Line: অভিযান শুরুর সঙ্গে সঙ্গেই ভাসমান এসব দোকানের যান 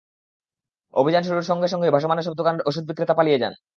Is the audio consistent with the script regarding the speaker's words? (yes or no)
no